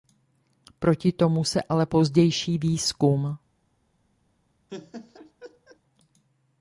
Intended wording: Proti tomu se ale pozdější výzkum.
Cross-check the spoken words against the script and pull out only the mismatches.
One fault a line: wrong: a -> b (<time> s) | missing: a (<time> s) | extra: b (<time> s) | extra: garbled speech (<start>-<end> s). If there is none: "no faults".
no faults